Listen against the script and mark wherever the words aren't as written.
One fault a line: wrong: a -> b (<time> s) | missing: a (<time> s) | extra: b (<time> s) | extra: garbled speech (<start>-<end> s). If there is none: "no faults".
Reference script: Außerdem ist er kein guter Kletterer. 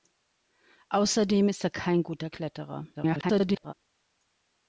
extra: garbled speech (2.9-3.7 s)